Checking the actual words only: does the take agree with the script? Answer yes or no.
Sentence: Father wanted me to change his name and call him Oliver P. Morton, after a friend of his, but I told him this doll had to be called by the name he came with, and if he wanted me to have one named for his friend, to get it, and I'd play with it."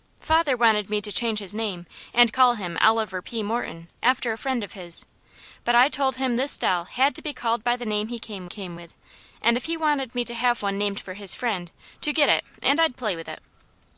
no